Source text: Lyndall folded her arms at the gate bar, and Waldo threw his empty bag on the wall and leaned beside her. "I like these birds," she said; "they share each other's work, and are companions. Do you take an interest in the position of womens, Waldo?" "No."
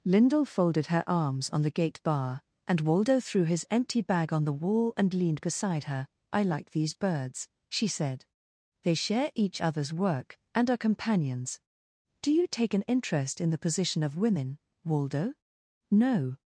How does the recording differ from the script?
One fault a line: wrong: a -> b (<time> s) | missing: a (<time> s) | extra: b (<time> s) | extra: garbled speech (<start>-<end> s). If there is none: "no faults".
wrong: at -> on (1.5 s)
wrong: womens -> women (14.2 s)